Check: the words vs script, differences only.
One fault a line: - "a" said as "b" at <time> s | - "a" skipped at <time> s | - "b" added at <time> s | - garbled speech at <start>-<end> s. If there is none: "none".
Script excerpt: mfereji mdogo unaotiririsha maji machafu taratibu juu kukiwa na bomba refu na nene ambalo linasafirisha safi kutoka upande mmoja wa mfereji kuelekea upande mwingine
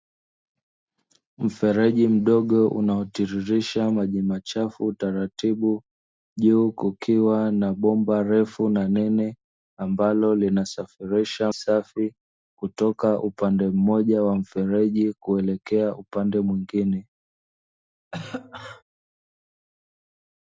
none